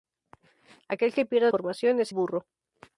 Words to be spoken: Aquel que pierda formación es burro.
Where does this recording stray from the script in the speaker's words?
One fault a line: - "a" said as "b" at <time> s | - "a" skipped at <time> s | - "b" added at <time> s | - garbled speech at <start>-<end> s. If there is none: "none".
none